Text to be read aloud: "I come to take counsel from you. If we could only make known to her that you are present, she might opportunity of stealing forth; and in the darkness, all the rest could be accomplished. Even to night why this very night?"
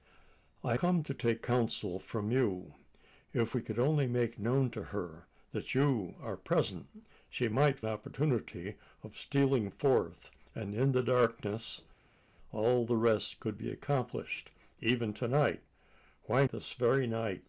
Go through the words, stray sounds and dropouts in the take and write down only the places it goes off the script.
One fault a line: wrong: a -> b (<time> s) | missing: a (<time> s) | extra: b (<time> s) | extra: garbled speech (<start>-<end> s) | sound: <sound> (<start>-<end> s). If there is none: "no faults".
no faults